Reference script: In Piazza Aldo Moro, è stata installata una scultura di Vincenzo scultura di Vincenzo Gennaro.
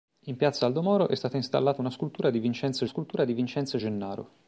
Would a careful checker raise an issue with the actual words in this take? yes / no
no